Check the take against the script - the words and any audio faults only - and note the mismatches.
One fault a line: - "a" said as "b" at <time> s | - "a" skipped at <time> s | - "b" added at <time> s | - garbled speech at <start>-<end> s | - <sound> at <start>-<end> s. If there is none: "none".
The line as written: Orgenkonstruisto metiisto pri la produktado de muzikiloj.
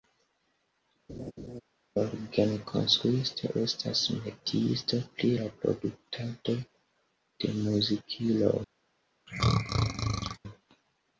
- laugh at 1.1-1.6 s
- "estas" added at 3.6 s
- throat clearing at 9.3-10.4 s